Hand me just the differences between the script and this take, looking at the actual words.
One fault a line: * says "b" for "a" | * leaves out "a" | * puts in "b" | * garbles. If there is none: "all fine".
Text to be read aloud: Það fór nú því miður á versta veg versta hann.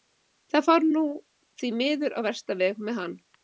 * says "með" for "versta"